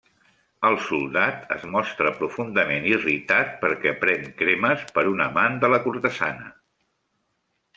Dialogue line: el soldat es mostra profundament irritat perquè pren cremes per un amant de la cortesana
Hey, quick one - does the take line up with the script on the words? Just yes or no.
yes